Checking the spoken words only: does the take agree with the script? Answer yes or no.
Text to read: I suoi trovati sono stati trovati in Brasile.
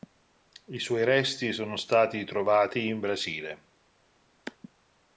no